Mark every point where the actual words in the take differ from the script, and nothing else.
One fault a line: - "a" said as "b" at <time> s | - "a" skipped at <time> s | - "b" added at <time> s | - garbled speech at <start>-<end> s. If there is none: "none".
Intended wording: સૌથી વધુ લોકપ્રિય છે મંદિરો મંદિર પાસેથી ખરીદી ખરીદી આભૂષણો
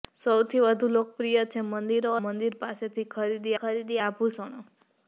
none